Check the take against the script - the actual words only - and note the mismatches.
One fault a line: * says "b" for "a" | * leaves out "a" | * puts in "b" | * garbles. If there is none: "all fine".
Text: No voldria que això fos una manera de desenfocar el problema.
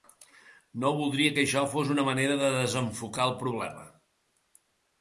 all fine